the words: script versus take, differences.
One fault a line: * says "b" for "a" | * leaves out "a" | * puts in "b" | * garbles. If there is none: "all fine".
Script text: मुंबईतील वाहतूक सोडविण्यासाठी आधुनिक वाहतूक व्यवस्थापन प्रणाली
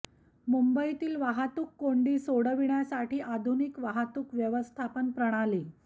* puts in "कोंडी"